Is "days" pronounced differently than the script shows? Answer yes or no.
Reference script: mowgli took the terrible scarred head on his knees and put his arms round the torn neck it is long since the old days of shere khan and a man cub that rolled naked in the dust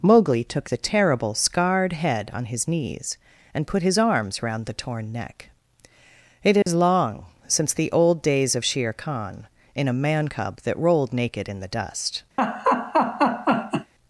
no